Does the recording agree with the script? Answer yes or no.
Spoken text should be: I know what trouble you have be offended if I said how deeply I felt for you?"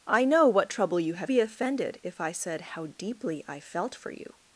yes